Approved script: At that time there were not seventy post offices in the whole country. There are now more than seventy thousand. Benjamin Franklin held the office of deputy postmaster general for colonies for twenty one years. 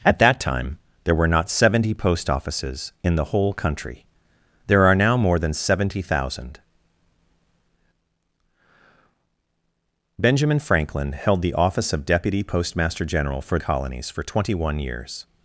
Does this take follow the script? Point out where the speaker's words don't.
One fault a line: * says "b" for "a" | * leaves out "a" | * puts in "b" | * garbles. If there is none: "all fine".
all fine